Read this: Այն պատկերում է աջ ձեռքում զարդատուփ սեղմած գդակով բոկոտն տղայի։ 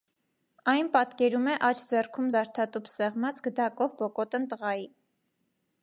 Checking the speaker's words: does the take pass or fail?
pass